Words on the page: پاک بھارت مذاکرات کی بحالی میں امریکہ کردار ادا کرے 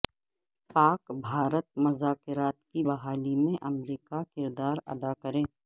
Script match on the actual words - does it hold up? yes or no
yes